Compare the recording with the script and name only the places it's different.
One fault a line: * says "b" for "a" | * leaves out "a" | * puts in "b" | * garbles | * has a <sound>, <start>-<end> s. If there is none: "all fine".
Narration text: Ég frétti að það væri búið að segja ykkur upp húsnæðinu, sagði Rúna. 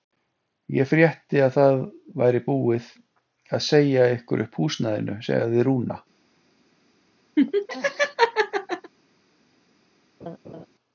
* has a laugh, 7.4-8.9 s
* has a laugh, 10.2-10.7 s